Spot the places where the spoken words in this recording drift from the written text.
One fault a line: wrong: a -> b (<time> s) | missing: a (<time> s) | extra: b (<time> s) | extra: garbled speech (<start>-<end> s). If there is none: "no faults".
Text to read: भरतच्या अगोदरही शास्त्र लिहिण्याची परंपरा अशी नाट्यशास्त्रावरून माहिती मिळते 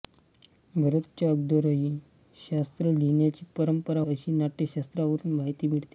no faults